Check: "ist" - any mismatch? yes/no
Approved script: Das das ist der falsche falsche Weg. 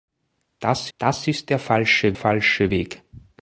no